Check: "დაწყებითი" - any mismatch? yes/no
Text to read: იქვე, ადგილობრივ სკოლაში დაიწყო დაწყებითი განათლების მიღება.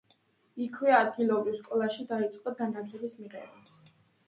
yes